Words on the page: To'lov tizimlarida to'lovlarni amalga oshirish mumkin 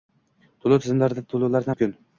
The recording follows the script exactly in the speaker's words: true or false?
false